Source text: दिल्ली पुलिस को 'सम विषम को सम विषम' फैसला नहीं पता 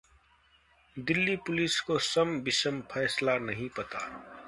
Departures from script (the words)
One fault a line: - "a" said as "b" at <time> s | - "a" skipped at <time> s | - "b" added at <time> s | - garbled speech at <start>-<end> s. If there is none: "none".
- "को सम विषम" skipped at 2.8 s